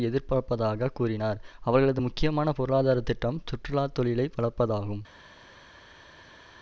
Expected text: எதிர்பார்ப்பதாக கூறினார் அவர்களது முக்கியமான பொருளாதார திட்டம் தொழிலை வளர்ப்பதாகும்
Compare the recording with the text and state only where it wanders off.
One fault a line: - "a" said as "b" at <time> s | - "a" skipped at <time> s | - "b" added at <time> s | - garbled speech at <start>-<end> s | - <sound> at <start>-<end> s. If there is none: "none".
- "சுற்றுலா" added at 3.5 s